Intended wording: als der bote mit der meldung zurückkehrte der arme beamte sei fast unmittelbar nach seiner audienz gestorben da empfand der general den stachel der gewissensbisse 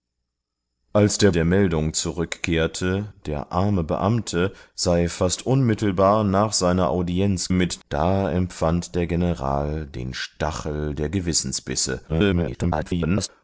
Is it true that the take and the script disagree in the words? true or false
true